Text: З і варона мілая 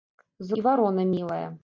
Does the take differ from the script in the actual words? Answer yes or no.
no